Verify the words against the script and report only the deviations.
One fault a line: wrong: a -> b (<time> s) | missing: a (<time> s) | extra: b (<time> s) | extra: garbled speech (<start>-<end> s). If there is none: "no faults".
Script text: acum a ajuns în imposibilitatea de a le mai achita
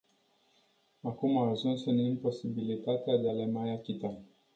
no faults